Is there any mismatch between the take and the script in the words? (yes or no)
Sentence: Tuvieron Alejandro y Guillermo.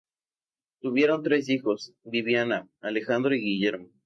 yes